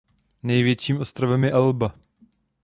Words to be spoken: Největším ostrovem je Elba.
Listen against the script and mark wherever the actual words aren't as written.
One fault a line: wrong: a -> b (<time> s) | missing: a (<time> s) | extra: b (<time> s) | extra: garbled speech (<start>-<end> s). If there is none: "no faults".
no faults